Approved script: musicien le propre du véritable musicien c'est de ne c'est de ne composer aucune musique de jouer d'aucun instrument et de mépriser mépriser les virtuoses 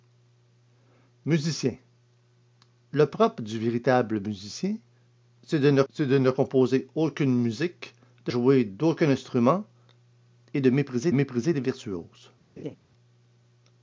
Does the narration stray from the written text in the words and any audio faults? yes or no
yes